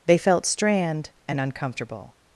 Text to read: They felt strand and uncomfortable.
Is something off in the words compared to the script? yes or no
no